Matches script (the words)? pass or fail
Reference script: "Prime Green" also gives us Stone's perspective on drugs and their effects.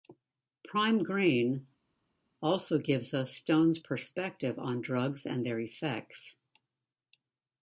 pass